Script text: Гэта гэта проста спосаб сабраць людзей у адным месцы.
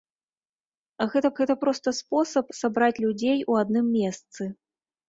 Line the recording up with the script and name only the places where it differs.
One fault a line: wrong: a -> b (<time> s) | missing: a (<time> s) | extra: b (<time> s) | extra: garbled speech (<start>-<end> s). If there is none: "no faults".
no faults